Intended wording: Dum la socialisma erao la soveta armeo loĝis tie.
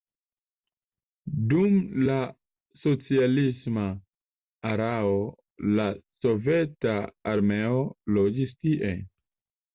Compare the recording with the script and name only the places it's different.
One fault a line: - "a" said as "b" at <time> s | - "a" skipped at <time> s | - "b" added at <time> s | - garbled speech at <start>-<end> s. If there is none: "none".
none